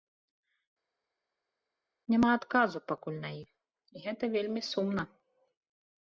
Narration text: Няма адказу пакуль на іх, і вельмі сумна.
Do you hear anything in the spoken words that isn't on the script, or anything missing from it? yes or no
yes